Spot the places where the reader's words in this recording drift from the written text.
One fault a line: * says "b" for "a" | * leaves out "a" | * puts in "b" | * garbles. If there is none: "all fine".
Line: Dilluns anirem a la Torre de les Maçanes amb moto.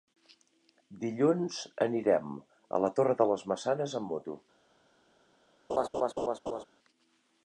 all fine